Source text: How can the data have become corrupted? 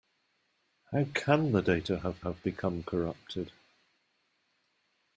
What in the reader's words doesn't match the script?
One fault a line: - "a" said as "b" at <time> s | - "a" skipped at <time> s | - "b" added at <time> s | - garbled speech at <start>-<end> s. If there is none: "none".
- "have" added at 2.2 s